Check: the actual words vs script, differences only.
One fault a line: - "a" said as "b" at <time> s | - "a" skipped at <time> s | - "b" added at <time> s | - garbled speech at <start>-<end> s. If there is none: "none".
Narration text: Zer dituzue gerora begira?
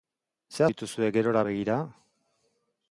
none